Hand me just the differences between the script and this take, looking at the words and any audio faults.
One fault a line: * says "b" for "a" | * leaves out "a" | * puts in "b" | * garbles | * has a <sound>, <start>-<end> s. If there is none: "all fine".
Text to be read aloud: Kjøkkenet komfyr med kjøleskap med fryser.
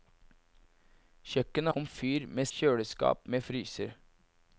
all fine